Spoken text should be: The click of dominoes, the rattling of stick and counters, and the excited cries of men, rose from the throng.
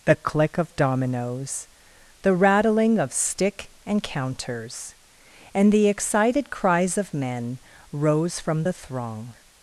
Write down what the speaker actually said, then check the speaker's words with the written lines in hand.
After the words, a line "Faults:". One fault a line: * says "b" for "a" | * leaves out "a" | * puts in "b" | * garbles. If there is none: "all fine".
The click of dominoes, the rattling of stick and counters, and the excited cries of men, rose from the throng.
Faults:
all fine